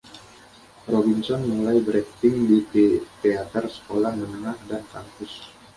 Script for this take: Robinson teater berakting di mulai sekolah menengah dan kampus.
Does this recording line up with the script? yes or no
no